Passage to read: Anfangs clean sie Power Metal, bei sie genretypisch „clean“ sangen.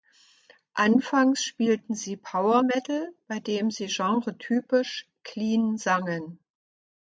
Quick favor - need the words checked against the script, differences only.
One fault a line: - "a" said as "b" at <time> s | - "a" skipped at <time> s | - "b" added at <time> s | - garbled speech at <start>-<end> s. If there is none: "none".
- "clean" said as "spielten" at 1.4 s
- "dem" added at 3.4 s